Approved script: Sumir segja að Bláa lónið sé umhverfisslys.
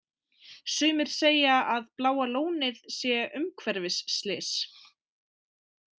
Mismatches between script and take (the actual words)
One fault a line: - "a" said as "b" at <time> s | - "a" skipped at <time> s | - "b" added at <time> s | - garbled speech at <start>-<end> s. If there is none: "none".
none